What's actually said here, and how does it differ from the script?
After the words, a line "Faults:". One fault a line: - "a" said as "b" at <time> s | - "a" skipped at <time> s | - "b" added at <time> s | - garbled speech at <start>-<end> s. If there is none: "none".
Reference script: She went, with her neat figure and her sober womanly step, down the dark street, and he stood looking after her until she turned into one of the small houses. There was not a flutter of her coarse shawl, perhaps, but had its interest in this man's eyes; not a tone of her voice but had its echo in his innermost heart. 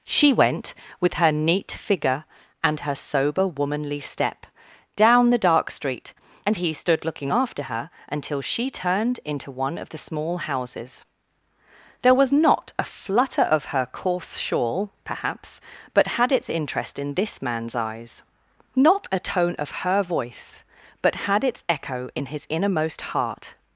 She went, with her neat figure and her sober womanly step, down the dark street, and he stood looking after her until she turned into one of the small houses. There was not a flutter of her coarse shawl, perhaps, but had its interest in this man's eyes; not a tone of her voice but had its echo in his innermost heart.
Faults:
none